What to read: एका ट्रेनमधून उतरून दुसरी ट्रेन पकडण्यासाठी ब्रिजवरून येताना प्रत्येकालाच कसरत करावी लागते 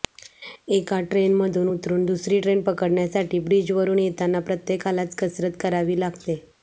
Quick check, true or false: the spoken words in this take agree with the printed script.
true